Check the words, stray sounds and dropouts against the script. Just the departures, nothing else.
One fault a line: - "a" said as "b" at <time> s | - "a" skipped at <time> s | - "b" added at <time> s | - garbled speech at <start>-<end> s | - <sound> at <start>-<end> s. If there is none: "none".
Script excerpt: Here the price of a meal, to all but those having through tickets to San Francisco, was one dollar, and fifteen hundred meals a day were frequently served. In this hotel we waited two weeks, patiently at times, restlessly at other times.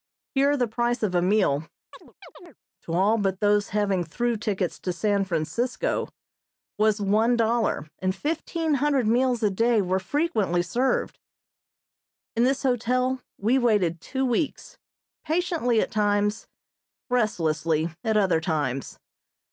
- chirp at 1.9-2.6 s